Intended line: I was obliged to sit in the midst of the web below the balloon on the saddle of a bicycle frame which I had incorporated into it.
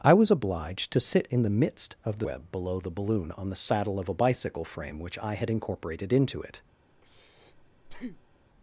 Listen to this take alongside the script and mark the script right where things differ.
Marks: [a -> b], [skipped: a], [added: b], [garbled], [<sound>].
I was obliged to sit in the midst of the web below the balloon on the saddle of a bicycle frame which I had incorporated into it. [breath]